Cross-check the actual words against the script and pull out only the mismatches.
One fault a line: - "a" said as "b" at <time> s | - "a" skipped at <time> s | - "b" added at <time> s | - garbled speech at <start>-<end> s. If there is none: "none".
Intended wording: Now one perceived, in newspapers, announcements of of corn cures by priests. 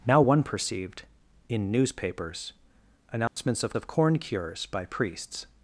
none